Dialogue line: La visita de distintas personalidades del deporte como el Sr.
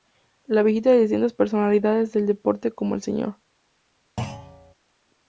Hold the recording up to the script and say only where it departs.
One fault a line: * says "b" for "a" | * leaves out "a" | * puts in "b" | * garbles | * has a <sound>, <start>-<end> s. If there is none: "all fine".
* has a thud, 4.2-4.7 s